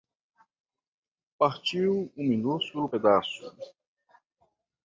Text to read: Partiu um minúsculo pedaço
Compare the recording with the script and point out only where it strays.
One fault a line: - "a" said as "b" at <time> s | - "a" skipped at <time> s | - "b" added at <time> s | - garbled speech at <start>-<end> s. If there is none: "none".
none